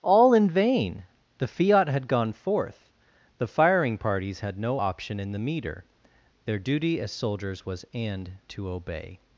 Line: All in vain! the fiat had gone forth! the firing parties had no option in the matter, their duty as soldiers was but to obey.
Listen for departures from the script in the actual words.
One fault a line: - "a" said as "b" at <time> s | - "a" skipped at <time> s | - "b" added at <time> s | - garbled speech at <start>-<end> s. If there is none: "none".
- "matter" said as "meter" at 5.4 s
- "but" said as "and" at 7.9 s